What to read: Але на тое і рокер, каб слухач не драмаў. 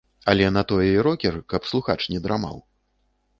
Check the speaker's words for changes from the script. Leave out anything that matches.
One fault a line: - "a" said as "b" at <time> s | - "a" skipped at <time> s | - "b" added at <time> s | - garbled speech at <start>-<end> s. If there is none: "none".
none